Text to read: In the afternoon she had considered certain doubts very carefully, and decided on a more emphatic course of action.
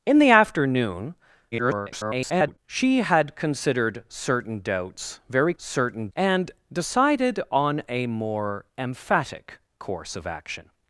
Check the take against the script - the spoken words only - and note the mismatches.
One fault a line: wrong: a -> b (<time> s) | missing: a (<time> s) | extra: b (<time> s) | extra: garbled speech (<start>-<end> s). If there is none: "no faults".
extra: garbled speech (1.5-2.6 s)
wrong: carefully -> certain (5.6 s)